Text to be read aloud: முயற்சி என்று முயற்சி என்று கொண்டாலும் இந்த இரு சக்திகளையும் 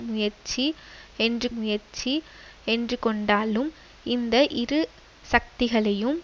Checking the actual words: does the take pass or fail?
pass